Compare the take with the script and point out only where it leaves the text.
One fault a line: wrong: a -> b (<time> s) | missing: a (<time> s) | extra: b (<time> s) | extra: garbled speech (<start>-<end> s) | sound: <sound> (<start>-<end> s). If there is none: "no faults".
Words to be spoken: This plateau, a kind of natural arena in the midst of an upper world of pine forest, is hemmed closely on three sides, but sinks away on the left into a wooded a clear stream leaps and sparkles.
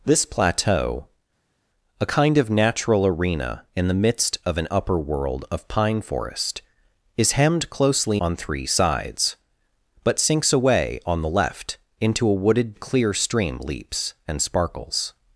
no faults